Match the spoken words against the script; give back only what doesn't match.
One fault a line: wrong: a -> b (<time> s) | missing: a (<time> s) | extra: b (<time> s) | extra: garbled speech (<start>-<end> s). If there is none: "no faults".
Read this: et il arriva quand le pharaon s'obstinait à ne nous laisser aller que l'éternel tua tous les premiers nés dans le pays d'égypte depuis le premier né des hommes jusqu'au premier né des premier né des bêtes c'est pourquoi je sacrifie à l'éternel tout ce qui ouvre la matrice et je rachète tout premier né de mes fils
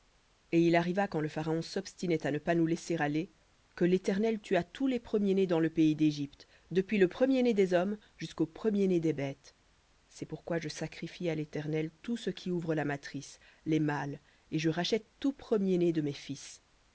extra: pas (2.4 s)
missing: premier né des (9.1 s)
extra: les mâles (13.7 s)